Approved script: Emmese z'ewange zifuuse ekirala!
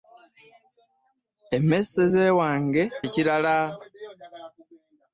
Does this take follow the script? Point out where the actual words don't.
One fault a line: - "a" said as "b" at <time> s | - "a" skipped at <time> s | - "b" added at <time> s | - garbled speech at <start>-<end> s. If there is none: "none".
- "zifuuse" skipped at 2.8 s